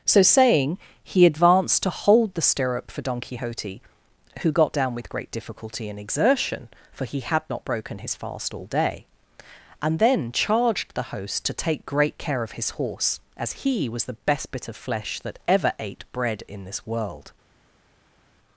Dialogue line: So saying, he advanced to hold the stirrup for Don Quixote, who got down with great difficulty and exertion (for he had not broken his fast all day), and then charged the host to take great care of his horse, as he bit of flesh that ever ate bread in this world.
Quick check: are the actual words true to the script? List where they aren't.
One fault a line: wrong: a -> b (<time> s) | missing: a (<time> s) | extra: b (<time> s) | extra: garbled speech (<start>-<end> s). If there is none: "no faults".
extra: was the best (13.9 s)